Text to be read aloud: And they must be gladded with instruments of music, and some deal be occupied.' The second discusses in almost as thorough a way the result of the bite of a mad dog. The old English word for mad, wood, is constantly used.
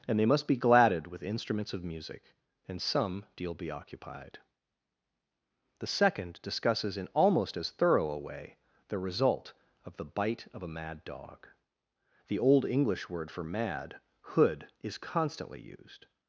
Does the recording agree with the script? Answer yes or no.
no